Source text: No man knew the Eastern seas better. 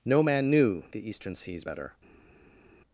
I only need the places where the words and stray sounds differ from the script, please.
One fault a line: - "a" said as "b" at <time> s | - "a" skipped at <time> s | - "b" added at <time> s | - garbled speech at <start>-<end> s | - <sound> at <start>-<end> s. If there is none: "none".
none